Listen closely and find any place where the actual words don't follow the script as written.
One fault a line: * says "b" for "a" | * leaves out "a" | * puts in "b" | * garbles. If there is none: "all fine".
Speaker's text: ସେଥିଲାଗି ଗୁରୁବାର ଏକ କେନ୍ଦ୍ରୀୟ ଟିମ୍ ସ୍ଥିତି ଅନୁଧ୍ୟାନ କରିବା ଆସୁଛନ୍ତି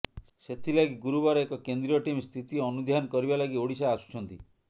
* puts in "ଲାଗି ଓଡ଼ିଶା"